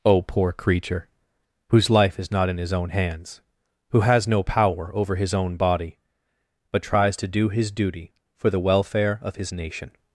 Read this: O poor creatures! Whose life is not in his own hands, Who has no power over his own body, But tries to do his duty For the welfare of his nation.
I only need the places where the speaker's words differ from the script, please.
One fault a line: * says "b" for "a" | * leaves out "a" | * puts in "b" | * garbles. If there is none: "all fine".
* says "creature" for "creatures"